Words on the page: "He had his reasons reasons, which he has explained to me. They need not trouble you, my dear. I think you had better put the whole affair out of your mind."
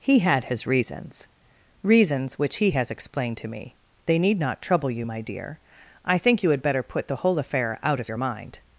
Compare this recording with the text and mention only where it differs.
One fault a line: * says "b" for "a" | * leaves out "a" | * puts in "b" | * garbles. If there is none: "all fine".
all fine